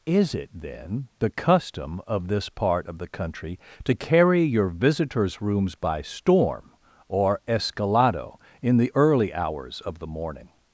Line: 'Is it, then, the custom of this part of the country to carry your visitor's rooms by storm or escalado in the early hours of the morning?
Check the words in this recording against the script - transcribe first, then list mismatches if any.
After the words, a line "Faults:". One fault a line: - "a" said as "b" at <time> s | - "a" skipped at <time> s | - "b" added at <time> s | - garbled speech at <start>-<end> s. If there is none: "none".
'Is it, then, the custom of this part of the country to carry your visitor's rooms by storm or escalado in the early hours of the morning?
Faults:
none